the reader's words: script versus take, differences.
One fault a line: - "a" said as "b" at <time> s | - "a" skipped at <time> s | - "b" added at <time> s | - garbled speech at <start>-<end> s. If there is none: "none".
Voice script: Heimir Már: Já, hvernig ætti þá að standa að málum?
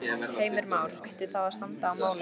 - "Já hvernig" skipped at 0.9 s